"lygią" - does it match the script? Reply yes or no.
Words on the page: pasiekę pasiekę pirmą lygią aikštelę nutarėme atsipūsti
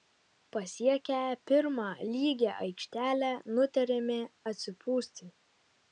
yes